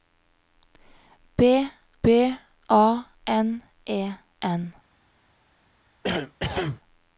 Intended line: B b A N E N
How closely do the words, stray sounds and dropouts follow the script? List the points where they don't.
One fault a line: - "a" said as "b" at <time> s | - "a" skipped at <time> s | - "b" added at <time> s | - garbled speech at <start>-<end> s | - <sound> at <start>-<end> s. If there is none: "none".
- cough at 6.0-6.8 s